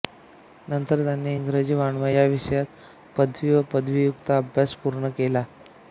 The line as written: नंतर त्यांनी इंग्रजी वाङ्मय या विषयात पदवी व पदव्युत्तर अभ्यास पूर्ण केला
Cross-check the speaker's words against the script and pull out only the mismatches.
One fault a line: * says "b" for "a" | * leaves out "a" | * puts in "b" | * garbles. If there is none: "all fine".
all fine